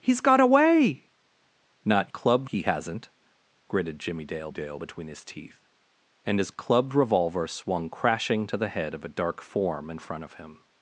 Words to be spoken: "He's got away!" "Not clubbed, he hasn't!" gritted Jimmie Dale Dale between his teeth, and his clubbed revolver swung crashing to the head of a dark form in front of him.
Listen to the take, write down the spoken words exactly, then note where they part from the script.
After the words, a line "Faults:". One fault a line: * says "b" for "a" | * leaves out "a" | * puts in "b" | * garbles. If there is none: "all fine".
"He's got away!" "Not clubbed, he hasn't!" gritted Jimmie Dale Dale between his teeth, and his clubbed revolver swung crashing to the head of a dark form in front of him.
Faults:
all fine